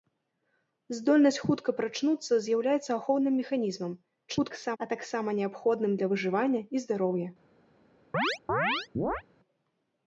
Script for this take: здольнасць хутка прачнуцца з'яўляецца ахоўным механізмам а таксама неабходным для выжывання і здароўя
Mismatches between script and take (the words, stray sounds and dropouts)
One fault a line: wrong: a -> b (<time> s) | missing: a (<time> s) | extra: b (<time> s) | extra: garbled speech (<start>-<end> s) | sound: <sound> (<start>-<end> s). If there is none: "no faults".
extra: garbled speech (4.3-4.8 s)
sound: chirp (8.1-9.2 s)